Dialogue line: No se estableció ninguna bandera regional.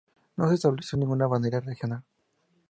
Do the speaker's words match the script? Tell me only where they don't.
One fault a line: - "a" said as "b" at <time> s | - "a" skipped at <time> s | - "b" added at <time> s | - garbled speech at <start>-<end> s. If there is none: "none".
none